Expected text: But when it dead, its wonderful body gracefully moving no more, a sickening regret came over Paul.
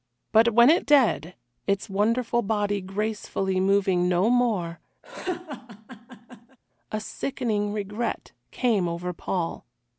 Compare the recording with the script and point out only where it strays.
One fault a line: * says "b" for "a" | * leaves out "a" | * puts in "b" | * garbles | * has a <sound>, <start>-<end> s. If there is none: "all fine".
* has a laugh, 5.0-6.6 s